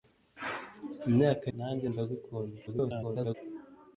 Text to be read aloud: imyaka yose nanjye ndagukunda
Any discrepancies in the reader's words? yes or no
yes